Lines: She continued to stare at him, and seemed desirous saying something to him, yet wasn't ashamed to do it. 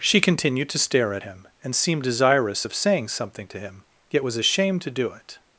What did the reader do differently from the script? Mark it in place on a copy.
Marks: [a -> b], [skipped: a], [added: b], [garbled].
She continued to stare at him, and seemed desirous [added: of] saying something to him, yet [wasn't -> was] ashamed to do it.